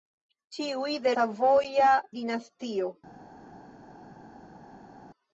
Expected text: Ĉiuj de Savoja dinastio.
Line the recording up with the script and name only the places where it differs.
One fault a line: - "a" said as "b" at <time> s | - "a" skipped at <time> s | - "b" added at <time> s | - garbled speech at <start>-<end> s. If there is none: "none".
none